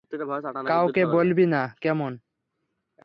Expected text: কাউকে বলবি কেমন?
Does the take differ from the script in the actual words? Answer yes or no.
yes